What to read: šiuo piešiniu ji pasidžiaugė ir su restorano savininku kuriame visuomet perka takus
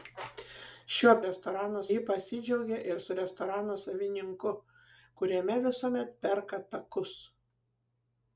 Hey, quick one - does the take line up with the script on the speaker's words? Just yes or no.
no